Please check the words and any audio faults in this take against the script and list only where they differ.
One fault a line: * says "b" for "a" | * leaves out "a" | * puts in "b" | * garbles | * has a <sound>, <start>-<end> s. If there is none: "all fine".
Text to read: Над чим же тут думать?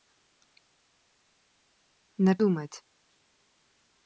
* leaves out "чим же тут"